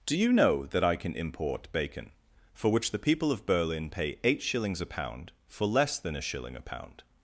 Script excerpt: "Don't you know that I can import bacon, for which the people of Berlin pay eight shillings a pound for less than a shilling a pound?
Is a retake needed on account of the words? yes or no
yes